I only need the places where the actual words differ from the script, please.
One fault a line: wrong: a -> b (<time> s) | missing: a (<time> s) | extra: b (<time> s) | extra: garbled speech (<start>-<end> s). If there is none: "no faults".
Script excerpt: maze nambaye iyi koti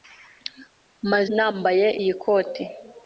no faults